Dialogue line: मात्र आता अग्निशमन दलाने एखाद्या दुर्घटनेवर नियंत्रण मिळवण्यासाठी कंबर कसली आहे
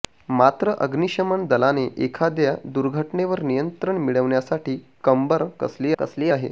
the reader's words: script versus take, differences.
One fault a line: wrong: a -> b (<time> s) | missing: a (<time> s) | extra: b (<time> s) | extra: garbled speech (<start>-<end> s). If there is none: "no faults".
missing: आता (0.7 s)
extra: कसली (6.0 s)